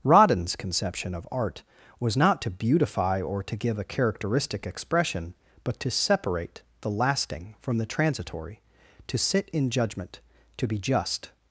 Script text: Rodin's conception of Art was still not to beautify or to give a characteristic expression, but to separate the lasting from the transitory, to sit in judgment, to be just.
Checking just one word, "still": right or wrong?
wrong